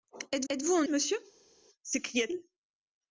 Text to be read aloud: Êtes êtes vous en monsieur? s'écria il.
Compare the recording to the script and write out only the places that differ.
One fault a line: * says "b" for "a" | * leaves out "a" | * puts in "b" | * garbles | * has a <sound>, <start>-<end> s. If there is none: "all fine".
all fine